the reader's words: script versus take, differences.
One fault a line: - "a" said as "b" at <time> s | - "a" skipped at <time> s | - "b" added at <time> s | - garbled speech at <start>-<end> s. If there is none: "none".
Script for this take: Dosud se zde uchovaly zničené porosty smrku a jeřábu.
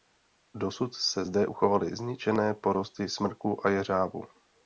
none